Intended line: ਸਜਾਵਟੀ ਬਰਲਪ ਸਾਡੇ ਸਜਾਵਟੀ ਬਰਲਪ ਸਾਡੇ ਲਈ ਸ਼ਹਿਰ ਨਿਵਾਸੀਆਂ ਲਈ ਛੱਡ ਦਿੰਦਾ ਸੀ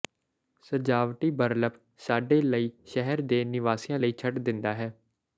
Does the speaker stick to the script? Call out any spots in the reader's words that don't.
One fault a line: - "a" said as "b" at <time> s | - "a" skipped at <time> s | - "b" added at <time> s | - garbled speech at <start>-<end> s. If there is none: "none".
- "ਸਜਾਵਟੀ ਬਰਲਪ ਸਾਡੇ" skipped at 2.4 s
- "ਦੇ" added at 3.2 s
- "ਸੀ" said as "ਹੈ" at 4.7 s